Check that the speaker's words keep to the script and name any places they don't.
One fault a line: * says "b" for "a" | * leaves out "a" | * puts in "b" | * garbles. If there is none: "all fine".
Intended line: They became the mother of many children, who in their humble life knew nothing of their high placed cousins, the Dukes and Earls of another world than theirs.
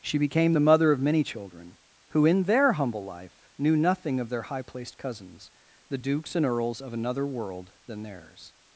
* says "She" for "They"